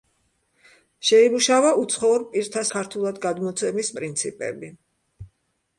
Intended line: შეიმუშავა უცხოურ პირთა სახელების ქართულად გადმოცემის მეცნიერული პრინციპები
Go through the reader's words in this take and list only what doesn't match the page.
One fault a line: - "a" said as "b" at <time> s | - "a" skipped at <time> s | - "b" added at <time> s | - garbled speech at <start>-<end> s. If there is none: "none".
- "სახელების" skipped at 2.6 s
- "მეცნიერული" skipped at 3.9 s